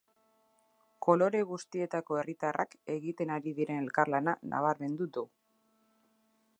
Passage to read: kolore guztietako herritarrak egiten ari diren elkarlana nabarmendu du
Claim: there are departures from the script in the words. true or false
false